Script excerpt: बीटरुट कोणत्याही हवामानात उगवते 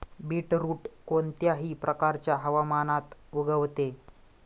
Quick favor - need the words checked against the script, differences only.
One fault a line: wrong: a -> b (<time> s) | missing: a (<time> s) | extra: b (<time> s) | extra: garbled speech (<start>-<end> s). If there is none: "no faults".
extra: प्रकारच्या (1.7 s)